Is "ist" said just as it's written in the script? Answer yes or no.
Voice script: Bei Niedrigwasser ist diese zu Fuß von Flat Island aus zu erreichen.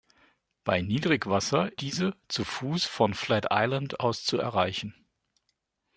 no